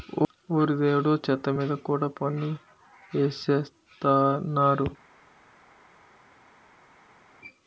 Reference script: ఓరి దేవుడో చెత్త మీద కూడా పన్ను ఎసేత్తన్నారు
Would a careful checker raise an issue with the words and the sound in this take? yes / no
no